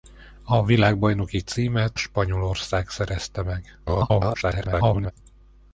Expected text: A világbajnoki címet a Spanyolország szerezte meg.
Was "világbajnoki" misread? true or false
false